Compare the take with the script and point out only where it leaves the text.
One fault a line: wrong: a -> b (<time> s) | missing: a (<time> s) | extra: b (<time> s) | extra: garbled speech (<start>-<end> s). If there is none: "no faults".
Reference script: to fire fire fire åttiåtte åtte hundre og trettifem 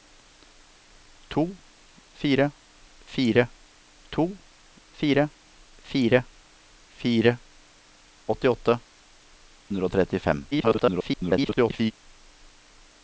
extra: to (4.1 s)
extra: fire fire (5.8 s)
missing: åtte (8.8 s)
extra: garbled speech (10.5-11.9 s)